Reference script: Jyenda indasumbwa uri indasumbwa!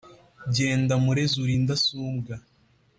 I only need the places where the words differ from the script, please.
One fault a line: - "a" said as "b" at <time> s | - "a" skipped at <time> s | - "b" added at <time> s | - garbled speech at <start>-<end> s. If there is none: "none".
- "indasumbwa" said as "murezi" at 1.0 s